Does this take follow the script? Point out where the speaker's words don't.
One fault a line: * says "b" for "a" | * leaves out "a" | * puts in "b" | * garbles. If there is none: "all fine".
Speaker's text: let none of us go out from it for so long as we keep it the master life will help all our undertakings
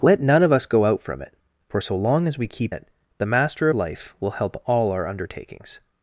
all fine